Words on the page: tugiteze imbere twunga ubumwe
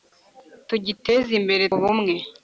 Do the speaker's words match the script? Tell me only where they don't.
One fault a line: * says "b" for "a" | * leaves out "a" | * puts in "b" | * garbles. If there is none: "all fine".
* leaves out "twunga"